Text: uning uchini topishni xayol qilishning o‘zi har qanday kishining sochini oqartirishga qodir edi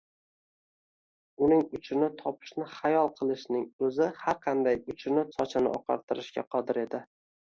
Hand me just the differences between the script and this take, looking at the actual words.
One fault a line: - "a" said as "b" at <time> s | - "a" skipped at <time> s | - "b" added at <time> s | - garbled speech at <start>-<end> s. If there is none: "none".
- "kishining" said as "uchini" at 4.9 s